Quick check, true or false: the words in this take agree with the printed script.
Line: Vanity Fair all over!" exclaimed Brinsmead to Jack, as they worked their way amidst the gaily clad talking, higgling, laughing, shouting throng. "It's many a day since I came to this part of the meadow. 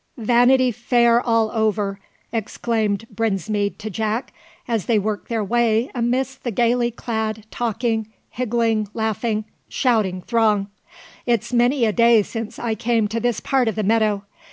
true